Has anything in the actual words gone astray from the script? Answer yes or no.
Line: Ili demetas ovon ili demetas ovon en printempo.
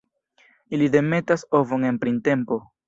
yes